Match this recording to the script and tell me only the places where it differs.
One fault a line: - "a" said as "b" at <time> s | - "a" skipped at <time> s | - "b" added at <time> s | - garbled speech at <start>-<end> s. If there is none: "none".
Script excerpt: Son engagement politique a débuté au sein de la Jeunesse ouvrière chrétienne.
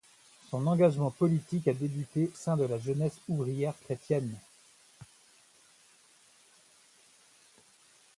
- "au" skipped at 2.3 s